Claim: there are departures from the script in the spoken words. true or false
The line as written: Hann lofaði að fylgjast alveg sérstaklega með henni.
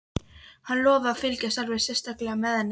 false